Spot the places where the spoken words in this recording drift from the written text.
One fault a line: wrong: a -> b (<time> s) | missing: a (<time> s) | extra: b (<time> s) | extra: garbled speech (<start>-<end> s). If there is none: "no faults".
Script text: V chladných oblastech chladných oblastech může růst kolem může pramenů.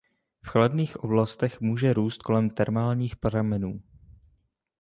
missing: chladných oblastech (1.6 s)
wrong: může -> termálních (2.5 s)